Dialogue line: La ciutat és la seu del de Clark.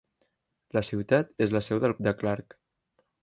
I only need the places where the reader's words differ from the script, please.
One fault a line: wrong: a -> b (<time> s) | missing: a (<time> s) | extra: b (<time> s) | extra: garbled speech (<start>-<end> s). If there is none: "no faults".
no faults